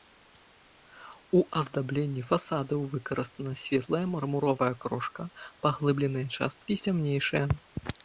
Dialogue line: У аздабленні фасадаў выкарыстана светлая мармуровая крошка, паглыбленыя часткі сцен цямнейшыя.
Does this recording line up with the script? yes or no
no